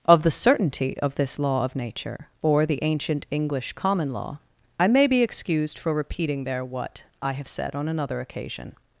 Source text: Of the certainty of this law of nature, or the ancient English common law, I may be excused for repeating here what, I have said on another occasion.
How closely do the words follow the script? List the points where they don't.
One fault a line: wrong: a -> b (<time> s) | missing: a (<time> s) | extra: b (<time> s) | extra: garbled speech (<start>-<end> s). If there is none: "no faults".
wrong: here -> there (6.4 s)